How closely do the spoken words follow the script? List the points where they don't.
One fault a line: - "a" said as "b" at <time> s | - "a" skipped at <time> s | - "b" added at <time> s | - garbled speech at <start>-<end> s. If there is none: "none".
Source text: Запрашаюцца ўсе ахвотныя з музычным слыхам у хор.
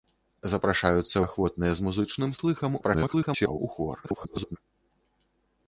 - "ўсе" skipped at 1.2 s
- garbled speech at 2.8-3.6 s
- garbled speech at 4.0-4.6 s